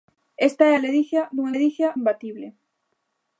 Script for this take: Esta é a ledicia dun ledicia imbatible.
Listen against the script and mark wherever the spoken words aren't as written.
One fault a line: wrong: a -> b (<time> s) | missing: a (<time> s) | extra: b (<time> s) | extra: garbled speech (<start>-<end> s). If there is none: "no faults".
no faults